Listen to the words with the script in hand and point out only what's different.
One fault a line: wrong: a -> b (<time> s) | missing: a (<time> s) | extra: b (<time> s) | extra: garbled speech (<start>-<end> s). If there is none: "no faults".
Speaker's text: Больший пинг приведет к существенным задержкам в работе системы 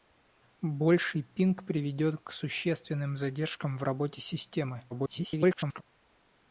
extra: garbled speech (4.9-5.8 s)